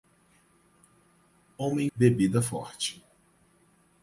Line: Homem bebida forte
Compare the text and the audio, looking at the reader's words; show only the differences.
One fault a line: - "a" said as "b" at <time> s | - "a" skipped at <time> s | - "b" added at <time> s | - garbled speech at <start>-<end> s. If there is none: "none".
none